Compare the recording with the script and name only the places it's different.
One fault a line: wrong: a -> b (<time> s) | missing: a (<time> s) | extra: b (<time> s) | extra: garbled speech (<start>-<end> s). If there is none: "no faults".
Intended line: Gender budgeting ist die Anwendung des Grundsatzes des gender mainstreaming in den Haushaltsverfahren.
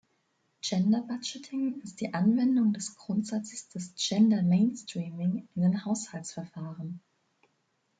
no faults